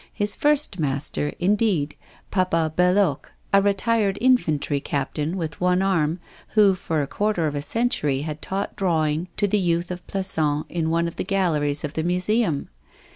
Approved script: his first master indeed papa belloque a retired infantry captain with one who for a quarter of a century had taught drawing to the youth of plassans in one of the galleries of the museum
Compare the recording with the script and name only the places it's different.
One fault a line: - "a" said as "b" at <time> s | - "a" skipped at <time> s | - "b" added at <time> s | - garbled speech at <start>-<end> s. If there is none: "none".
- "arm" added at 5.8 s